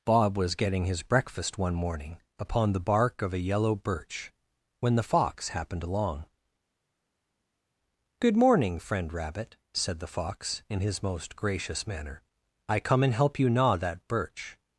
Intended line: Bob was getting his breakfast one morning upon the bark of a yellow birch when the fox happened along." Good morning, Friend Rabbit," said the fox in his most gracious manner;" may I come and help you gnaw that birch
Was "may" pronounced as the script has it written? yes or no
no